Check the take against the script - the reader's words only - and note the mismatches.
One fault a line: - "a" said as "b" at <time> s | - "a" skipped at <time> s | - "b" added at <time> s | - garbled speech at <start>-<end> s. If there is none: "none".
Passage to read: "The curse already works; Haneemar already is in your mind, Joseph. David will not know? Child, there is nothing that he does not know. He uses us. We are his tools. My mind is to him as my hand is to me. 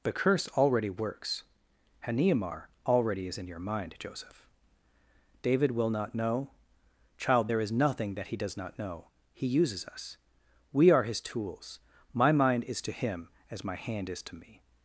none